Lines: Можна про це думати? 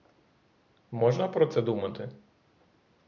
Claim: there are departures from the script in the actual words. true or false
false